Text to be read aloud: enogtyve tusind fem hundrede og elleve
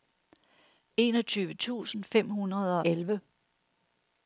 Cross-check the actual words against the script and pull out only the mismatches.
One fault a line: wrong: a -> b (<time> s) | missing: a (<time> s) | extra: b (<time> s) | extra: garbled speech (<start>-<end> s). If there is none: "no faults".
missing: og (2.8 s)